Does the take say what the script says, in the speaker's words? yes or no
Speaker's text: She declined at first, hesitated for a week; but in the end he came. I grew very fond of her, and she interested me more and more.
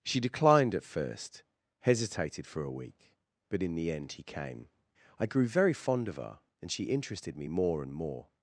yes